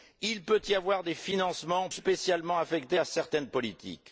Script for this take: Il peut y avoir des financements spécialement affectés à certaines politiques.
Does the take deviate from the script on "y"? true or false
false